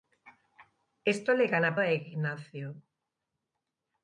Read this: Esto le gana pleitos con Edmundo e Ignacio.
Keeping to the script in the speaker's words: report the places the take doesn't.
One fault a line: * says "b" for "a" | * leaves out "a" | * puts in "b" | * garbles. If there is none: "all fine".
* leaves out "pleitos con Edmundo"